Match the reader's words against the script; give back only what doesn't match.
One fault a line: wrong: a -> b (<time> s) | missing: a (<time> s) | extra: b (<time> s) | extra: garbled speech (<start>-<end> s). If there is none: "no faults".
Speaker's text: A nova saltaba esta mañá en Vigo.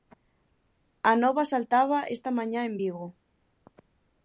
no faults